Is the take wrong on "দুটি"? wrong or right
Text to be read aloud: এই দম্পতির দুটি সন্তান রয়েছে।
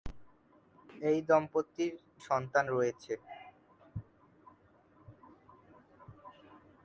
wrong